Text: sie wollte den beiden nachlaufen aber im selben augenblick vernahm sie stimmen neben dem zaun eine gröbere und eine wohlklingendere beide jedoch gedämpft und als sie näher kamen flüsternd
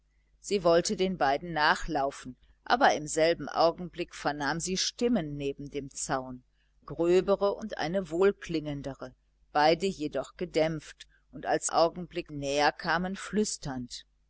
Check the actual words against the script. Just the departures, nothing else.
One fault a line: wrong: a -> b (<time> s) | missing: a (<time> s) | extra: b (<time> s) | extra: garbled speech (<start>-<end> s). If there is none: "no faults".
missing: eine (6.4 s)
wrong: sie -> augenblick (11.6 s)